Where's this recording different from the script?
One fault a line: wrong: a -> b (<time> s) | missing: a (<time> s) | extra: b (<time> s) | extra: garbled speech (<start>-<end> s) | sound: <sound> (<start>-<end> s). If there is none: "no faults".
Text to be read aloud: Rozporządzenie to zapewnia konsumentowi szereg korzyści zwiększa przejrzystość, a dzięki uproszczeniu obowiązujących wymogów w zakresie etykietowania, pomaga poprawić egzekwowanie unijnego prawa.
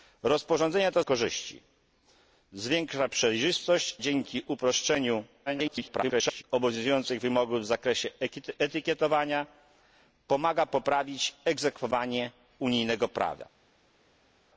missing: zapewnia konsumentowi szereg (1.0 s)
missing: a (4.0 s)
extra: garbled speech (5.5-6.4 s)